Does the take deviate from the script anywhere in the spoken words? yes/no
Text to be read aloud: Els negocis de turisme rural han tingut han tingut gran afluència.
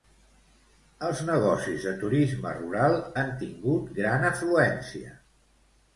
yes